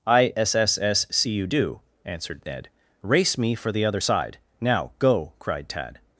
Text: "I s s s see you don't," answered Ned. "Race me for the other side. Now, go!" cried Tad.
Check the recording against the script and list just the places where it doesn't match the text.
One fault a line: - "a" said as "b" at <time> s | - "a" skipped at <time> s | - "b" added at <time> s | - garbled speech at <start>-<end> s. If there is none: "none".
- "don't" said as "do" at 1.4 s